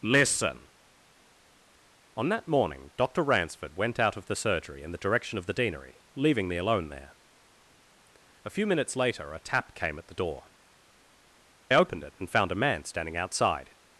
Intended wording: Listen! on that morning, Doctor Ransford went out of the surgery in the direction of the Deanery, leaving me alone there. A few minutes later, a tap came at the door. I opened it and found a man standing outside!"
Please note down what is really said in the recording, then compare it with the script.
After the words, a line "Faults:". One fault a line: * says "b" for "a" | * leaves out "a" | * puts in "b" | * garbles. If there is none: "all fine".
Listen! on that morning, Doctor Ransford went out of the surgery in the direction of the Deanery, leaving me alone there. A few minutes later, a tap came at the door. opened it and found a man standing outside!"
Faults:
* leaves out "I"